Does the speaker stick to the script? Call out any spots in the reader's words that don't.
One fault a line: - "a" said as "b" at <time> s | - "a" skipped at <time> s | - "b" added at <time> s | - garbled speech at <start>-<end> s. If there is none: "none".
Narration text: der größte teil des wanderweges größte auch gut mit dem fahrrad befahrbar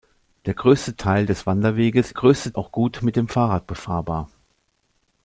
none